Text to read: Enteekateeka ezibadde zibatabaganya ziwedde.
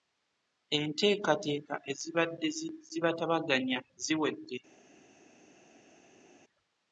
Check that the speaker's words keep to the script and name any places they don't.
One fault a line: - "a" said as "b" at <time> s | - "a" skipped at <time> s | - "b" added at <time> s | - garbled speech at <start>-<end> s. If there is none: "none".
none